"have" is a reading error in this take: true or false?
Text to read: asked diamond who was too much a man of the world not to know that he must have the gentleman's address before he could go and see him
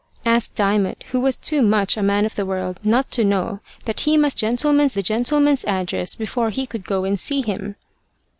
true